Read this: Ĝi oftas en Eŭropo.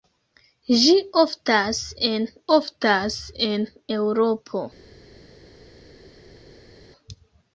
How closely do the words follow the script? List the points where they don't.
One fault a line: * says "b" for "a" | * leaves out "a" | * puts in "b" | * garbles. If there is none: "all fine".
* puts in "oftas en"